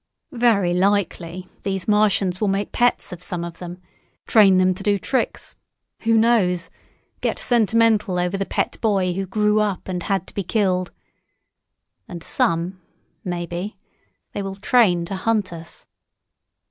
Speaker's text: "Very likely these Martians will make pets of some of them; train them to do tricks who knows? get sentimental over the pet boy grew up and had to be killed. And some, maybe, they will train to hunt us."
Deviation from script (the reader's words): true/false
true